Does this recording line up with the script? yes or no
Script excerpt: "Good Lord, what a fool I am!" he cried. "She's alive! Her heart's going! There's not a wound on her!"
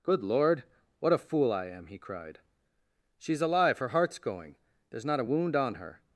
yes